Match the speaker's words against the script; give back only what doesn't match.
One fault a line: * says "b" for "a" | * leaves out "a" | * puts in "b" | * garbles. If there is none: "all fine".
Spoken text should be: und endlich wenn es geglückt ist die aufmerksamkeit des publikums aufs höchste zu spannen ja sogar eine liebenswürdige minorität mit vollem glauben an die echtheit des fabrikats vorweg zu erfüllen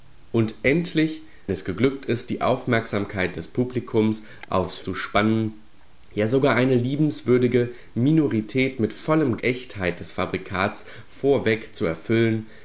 * leaves out "wenn"
* leaves out "höchste"
* leaves out "glauben an die"